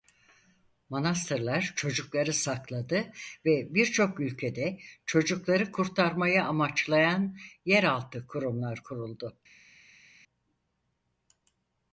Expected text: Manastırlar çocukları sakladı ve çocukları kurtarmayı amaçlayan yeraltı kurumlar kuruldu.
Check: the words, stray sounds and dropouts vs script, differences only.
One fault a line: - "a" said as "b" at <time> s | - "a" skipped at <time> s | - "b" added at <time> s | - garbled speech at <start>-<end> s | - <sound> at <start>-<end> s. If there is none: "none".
- "birçok ülkede" added at 3.7 s